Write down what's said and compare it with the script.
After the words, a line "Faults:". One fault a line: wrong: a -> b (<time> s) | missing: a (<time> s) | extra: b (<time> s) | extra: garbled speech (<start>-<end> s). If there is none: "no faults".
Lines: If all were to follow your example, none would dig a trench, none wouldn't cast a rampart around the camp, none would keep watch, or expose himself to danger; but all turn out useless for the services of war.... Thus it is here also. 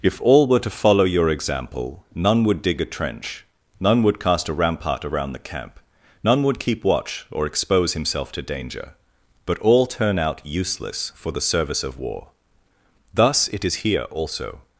If all were to follow your example, none would dig a trench, none would cast a rampart around the camp, none would keep watch, or expose himself to danger; but all turn out useless for the service of war.... Thus it is here also.
Faults:
wrong: wouldn't -> would (4.0 s)
wrong: services -> service (11.4 s)